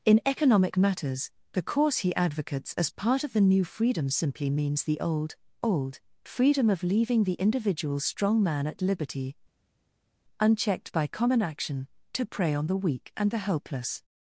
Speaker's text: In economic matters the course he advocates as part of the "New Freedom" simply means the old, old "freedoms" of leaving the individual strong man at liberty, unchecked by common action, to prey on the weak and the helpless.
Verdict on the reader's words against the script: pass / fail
fail